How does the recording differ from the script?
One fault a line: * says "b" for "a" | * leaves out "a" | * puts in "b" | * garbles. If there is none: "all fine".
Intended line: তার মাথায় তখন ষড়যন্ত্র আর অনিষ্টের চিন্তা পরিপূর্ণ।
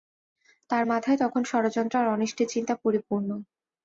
all fine